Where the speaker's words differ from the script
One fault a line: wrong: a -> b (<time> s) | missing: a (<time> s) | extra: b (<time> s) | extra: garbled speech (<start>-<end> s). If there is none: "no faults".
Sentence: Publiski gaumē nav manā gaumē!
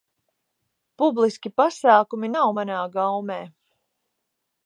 wrong: gaumē -> pasākumi (1.6 s)